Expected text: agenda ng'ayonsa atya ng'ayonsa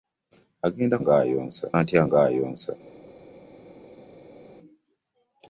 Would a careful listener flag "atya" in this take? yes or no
no